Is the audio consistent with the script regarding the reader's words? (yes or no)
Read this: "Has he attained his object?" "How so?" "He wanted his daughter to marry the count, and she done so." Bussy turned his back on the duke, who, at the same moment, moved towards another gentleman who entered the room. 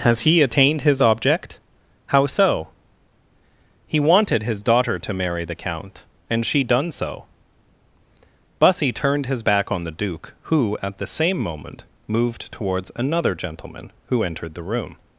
yes